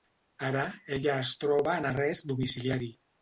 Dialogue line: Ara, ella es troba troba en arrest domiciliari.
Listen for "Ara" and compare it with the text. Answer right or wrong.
right